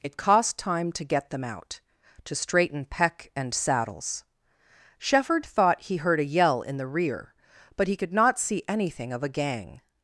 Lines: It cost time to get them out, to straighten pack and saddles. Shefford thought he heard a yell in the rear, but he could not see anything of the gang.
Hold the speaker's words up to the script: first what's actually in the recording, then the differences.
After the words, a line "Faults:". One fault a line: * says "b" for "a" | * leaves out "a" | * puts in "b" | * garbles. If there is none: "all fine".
It cost time to get them out, to straighten peck and saddles. Shefford thought he heard a yell in the rear, but he could not see anything of a gang.
Faults:
* says "peck" for "pack"
* says "a" for "the"